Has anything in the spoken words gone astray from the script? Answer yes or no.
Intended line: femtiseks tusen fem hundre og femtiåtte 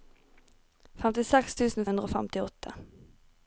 yes